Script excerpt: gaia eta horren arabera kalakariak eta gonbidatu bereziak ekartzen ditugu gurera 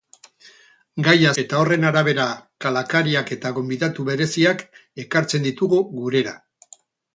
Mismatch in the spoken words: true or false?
false